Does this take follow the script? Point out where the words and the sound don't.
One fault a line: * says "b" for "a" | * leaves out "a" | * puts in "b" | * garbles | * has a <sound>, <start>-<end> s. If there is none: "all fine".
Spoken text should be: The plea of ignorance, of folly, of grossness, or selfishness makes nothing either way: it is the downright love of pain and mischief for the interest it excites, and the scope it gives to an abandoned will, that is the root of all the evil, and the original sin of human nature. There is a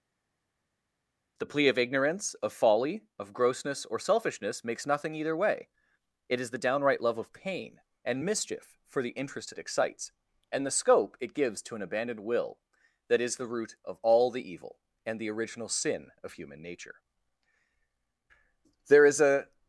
all fine